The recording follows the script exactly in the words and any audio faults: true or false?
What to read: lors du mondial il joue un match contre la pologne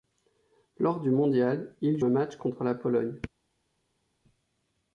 false